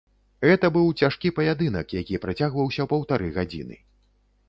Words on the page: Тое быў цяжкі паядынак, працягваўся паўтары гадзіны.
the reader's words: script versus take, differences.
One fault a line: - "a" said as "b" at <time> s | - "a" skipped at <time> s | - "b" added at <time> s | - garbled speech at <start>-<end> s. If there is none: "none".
- "Тое" said as "Гэта" at 0.5 s
- "які" added at 2.0 s